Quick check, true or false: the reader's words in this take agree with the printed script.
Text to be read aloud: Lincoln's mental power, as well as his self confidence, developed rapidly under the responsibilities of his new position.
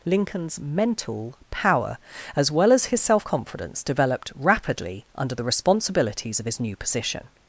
true